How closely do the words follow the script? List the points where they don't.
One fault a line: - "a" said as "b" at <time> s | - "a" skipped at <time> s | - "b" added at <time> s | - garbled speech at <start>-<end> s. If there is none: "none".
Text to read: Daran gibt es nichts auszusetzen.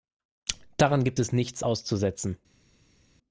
none